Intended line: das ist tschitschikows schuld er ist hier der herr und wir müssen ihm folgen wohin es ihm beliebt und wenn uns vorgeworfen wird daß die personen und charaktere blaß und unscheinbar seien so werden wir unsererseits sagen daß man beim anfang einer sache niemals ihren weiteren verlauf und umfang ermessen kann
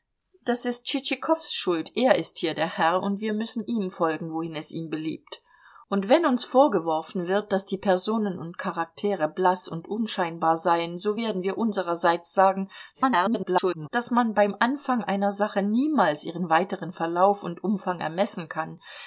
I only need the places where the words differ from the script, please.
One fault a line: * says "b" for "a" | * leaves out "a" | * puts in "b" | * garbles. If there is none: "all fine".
* garbles